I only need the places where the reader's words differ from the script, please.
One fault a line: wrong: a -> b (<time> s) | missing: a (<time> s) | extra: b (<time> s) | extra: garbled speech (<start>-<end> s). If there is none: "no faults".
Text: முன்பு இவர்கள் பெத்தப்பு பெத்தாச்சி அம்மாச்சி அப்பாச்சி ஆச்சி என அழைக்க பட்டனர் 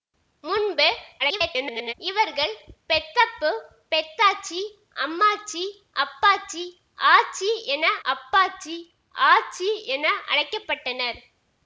extra: garbled speech (1.2-1.9 s)
extra: அப்பாச்சி ஆச்சி என (8.1 s)